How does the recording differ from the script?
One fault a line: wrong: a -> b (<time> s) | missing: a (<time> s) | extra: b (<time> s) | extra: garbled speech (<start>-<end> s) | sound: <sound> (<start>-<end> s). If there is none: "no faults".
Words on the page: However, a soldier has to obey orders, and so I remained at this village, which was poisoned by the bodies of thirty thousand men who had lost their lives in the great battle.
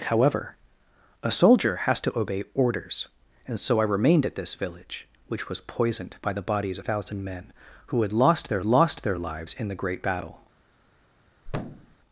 missing: of thirty (6.8 s)
extra: lost their (8.6 s)
sound: thud (11.4-12.0 s)